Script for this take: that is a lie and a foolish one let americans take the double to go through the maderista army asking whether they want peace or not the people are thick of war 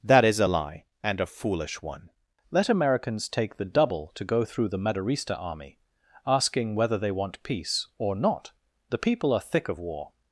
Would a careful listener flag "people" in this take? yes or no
no